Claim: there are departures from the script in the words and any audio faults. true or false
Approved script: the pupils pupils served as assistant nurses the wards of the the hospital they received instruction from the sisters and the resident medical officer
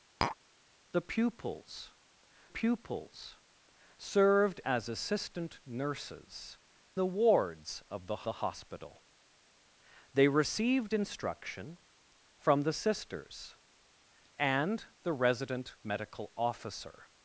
true